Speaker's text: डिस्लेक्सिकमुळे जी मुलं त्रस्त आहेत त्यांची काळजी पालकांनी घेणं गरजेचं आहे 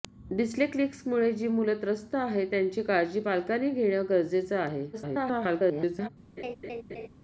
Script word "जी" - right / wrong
right